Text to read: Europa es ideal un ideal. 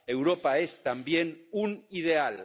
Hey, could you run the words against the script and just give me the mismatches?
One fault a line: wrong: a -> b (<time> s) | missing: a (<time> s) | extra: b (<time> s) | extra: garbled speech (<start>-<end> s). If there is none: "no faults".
wrong: ideal -> también (0.8 s)